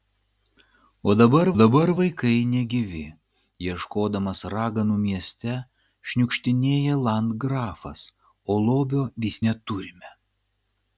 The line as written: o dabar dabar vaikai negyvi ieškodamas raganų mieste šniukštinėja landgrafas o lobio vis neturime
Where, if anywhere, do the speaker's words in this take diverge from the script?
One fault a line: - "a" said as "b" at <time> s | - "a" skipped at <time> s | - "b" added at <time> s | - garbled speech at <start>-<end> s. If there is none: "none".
none